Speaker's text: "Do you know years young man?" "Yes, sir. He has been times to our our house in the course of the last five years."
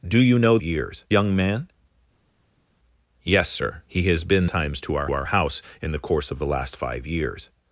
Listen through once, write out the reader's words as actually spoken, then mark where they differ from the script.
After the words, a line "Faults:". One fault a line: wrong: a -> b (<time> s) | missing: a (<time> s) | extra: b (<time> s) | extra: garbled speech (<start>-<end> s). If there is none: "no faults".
"Do you know years young man?" "Yes, sir. He has been times to our our house in the course of the last five years."
Faults:
no faults